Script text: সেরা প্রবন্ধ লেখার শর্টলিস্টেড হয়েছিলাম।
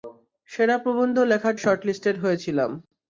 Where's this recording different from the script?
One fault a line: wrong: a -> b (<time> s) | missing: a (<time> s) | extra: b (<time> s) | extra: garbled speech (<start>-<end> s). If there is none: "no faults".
no faults